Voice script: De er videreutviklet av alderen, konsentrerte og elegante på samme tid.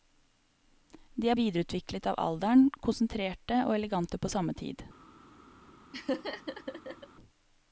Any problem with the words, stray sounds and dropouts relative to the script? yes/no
yes